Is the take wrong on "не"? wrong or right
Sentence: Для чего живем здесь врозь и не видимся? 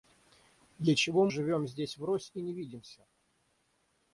right